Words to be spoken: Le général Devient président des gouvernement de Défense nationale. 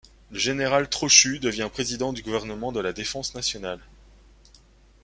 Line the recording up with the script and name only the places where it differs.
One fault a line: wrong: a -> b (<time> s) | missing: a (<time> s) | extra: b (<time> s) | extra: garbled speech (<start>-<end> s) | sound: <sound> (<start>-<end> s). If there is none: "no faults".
extra: Trochu (0.9 s)
wrong: des -> du (2.1 s)
extra: la (2.8 s)